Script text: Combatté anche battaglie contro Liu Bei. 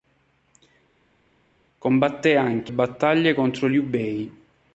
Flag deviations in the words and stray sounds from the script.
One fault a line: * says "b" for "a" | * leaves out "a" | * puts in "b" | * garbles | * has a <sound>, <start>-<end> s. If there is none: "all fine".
all fine